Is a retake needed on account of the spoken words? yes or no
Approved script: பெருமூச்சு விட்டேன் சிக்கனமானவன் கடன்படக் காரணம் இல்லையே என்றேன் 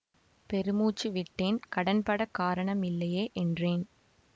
yes